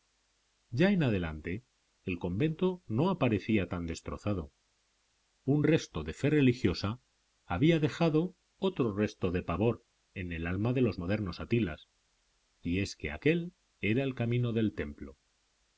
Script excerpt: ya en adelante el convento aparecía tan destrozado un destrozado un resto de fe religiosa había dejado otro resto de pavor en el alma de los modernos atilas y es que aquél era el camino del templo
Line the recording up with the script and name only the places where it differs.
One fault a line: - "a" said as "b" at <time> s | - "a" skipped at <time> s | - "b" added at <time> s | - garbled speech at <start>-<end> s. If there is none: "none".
- "no" added at 2.9 s
- "destrozado un" skipped at 5.6 s